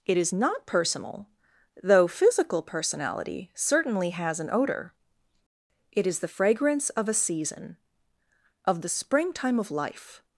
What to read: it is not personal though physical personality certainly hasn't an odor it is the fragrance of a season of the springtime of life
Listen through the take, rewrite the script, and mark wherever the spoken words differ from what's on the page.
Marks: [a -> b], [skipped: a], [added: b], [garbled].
it is not personal though physical personality certainly [hasn't -> has] an odor it is the fragrance of a season of the springtime of life